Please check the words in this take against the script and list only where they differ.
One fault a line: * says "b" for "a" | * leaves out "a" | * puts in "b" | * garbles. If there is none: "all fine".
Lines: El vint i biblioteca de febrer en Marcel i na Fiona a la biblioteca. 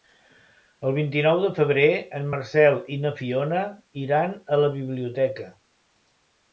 * says "nou" for "biblioteca"
* puts in "iran"